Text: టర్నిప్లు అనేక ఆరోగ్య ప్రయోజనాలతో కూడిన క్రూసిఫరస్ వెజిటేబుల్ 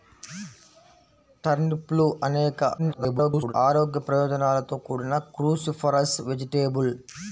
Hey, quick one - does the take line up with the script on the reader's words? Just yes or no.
no